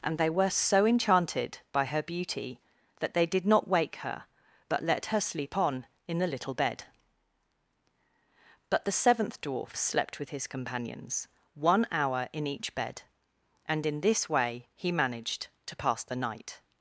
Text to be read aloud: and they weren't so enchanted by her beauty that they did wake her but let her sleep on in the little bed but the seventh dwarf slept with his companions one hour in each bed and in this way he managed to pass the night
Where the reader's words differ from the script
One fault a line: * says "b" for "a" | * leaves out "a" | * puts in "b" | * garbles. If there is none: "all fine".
* says "were" for "weren't"
* puts in "not"